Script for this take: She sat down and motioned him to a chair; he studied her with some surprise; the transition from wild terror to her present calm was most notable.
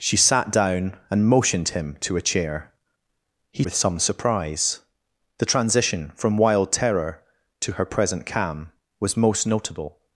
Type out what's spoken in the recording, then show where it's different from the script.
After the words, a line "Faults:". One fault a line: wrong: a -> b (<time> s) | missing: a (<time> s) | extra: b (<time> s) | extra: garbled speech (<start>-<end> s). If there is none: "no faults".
She sat down and motioned him to a chair; he with some surprise; the transition from wild terror to her present calm was most notable.
Faults:
missing: studied her (3.7 s)